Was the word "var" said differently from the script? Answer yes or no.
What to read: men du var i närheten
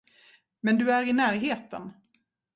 yes